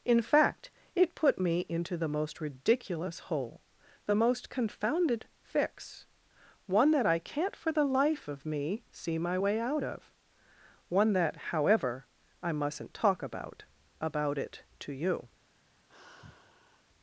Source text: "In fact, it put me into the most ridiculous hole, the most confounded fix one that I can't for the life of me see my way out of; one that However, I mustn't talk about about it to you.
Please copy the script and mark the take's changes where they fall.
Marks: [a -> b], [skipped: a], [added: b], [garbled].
"In fact, it put me into the most ridiculous hole, the most confounded fix one that I can't for the life of me see my way out of; one that However, I mustn't talk about about it to you.